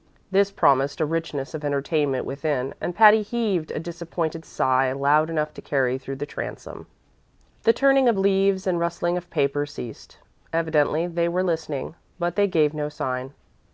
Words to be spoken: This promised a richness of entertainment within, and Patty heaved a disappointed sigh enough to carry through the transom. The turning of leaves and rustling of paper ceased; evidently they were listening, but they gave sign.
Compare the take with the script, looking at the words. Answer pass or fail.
fail